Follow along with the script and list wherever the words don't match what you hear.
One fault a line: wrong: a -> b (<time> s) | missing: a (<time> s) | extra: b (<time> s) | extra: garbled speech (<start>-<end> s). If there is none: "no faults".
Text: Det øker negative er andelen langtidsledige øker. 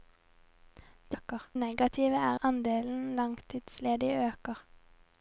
no faults